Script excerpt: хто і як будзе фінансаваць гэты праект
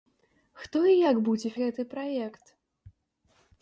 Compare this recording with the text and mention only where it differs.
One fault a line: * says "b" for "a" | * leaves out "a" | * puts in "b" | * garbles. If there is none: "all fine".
* leaves out "фінансаваць"